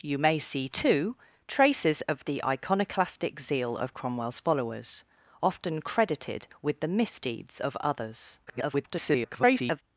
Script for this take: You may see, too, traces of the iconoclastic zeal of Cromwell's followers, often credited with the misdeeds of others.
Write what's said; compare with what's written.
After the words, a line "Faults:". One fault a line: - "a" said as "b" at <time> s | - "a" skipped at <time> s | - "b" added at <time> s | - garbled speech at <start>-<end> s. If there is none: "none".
You may see, too, traces of the iconoclastic zeal of Cromwell's followers, often credited with the misdeeds of others. [garbled]
Faults:
- garbled speech at 8.5-9.8 s